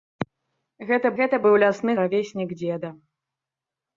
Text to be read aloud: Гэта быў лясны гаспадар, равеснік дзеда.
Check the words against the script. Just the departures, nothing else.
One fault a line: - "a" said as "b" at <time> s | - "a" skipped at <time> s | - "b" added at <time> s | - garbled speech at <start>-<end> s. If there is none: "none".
- "гэта" added at 1.2 s
- "гаспадар" skipped at 1.9 s